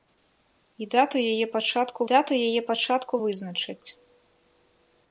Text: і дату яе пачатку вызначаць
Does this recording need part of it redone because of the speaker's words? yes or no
yes